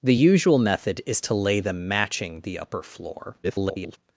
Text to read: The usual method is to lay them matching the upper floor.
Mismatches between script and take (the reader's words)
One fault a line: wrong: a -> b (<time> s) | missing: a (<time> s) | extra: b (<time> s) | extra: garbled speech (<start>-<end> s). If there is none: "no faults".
extra: garbled speech (3.4-4.0 s)